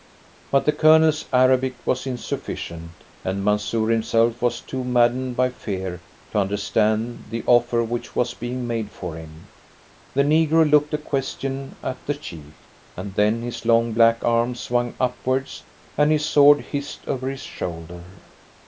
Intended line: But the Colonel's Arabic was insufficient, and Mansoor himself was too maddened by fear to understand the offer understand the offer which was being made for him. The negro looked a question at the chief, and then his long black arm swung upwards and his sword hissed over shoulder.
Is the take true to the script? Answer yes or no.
no